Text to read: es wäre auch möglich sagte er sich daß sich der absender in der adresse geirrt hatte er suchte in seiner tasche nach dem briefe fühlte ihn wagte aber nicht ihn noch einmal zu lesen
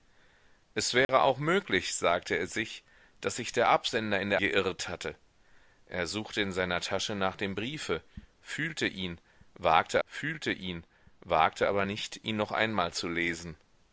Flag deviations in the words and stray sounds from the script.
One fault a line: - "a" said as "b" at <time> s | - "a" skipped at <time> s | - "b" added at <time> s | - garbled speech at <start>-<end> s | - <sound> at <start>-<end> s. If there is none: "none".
- dropout at 1.0-1.1 s
- "adresse" skipped at 4.4 s
- "fühlte ihn wagte" added at 10.1 s